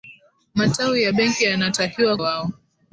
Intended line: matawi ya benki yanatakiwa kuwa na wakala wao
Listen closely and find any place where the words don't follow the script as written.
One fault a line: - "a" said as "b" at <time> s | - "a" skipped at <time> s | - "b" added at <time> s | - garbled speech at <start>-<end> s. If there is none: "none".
- "kuwa na wakala" skipped at 2.2 s